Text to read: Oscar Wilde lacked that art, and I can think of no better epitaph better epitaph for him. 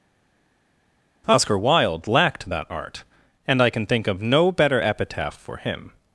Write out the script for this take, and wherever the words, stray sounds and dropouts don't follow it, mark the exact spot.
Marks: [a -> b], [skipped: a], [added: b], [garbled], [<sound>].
Oscar Wilde lacked that art, and I can think of no better epitaph [skipped: better epitaph] for him.